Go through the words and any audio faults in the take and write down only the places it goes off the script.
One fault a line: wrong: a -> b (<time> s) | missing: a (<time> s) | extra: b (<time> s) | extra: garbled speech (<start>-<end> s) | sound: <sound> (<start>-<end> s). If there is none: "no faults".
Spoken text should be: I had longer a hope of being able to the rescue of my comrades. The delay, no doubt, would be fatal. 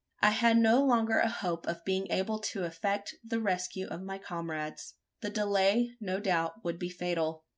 extra: no (0.6 s)
extra: effect (2.6 s)